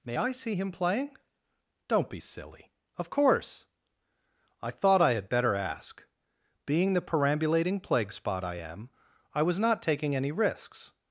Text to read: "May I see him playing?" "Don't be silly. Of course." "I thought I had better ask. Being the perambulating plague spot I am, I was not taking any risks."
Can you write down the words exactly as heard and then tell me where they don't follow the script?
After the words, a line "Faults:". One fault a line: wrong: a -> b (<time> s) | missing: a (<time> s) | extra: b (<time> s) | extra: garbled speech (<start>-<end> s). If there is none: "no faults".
"May I see him playing?" "Don't be silly. Of course." "I thought I had better ask. Being the perambulating plague spot I am, I was not taking any risks."
Faults:
no faults